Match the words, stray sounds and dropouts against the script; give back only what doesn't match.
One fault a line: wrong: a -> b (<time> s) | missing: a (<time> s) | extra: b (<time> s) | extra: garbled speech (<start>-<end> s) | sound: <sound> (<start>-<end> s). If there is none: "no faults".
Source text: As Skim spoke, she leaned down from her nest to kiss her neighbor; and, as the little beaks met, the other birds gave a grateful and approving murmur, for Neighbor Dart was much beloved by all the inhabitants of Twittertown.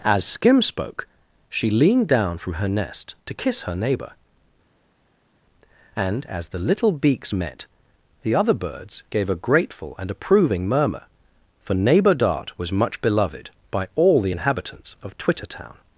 no faults